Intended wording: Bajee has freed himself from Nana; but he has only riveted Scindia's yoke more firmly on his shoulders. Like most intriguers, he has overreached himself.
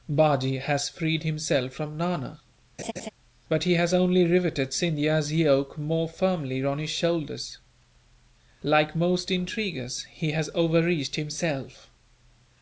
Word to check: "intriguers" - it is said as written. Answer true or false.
true